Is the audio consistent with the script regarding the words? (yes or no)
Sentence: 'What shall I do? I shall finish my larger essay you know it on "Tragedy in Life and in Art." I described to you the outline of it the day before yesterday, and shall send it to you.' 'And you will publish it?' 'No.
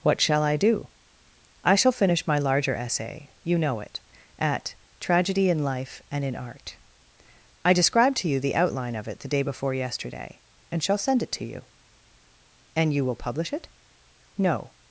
no